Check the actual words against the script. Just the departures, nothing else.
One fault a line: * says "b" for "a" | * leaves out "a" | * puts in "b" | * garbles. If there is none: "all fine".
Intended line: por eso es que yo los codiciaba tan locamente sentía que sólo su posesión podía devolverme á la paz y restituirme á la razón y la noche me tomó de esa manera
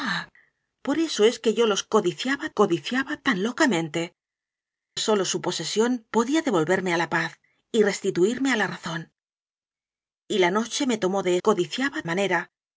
* puts in "codiciaba"
* leaves out "sentía que"
* says "codiciaba" for "esa"